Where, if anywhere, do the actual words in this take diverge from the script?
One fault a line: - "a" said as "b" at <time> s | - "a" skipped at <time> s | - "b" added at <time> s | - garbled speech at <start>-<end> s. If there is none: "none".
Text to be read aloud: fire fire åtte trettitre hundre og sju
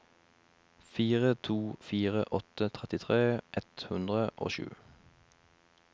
- "to" added at 1.5 s
- "ett" added at 3.6 s